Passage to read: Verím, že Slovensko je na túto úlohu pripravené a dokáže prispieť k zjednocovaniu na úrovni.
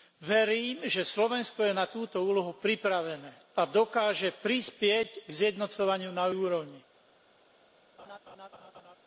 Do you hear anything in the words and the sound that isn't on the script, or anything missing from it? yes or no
yes